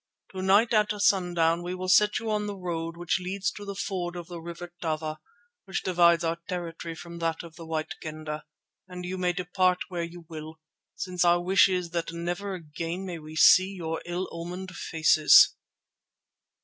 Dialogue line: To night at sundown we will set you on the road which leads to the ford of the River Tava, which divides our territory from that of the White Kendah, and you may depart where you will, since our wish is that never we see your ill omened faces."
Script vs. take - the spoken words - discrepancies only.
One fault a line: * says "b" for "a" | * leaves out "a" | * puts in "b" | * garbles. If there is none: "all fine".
* puts in "again may"